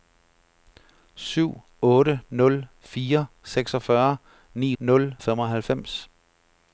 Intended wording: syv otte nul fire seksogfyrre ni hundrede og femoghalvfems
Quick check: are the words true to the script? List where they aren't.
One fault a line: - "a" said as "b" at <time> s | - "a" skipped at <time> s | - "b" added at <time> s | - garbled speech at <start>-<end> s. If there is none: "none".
- "hundrede" said as "nul" at 4.8 s